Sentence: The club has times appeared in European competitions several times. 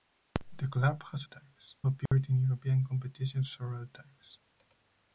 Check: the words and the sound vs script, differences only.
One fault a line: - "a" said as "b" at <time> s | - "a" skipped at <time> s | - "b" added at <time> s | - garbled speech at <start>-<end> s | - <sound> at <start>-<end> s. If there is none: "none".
- dropout at 2.1-2.1 s